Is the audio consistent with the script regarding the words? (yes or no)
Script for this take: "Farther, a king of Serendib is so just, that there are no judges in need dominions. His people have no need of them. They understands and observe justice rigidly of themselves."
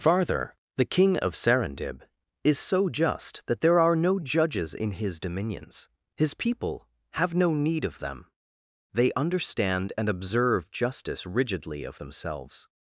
no